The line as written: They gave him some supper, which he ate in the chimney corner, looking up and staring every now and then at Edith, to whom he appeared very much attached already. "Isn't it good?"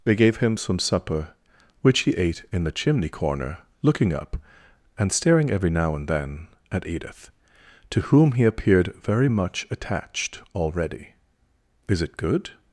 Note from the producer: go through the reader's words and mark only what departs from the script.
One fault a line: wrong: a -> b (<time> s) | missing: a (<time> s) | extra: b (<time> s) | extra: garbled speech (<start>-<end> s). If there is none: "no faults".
wrong: Isn't -> Is (11.9 s)